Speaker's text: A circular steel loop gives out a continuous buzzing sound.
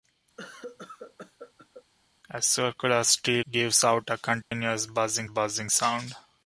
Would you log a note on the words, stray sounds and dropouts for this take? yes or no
yes